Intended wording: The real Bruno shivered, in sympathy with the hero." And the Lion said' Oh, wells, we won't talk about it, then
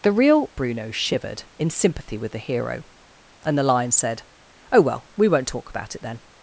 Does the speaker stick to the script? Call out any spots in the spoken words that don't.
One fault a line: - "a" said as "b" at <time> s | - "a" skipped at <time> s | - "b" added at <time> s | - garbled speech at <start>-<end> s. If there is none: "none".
- "wells" said as "well" at 4.8 s